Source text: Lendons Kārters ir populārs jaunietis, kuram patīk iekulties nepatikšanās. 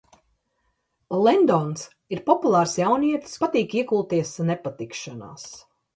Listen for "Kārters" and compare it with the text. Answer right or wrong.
wrong